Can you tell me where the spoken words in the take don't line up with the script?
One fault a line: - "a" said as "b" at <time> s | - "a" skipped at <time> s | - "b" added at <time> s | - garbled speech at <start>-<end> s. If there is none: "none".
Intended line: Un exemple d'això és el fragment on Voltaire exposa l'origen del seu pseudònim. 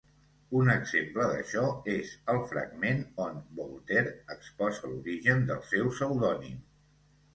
none